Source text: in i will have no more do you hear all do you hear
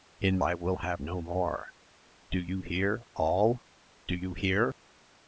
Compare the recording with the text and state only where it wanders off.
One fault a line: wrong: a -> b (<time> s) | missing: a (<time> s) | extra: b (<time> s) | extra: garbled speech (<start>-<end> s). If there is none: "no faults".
no faults